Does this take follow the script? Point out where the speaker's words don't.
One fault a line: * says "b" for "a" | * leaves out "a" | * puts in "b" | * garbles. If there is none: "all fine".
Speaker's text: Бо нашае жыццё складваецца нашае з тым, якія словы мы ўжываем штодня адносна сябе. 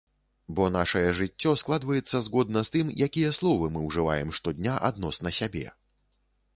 * says "згодна" for "нашае"